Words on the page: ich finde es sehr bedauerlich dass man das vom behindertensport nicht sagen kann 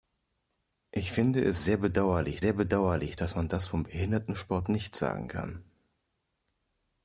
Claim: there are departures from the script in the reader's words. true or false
true